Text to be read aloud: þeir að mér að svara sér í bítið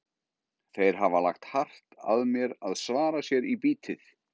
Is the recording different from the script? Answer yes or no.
yes